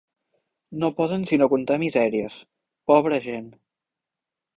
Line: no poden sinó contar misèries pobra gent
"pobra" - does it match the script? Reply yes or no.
yes